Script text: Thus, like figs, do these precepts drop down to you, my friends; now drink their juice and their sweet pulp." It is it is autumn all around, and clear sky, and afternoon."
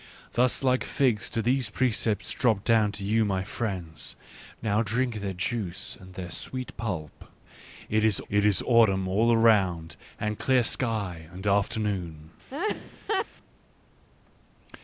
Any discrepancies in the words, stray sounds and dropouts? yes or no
yes